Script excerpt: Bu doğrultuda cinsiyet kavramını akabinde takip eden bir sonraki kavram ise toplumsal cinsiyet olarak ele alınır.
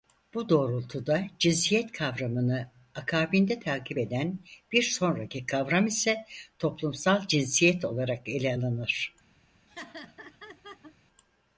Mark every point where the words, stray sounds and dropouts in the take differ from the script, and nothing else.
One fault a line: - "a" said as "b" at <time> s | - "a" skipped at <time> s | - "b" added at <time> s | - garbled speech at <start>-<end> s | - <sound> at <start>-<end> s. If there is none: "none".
- laugh at 9.7-11.0 s